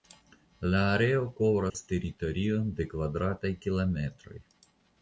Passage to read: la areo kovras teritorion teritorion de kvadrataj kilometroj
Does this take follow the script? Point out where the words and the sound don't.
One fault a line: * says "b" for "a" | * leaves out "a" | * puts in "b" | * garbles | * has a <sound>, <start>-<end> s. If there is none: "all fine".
* has a dropout, 1.7-1.7 s
* leaves out "teritorion"